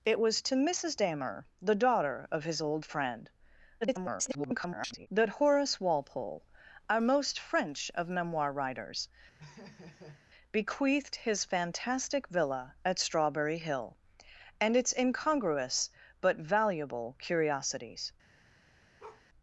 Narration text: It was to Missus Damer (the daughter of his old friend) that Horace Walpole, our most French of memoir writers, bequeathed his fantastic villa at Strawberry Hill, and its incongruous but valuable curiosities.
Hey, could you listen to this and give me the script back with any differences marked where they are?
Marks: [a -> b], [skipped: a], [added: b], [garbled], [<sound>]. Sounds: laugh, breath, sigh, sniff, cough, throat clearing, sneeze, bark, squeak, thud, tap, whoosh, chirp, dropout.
It was to Missus Damer (the daughter of his old friend) [garbled] that Horace Walpole, our most French of memoir writers, [laugh] bequeathed his fantastic villa at Strawberry Hill, and its incongruous but valuable curiosities. [bark]